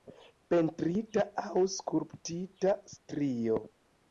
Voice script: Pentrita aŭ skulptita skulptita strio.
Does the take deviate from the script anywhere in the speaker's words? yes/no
yes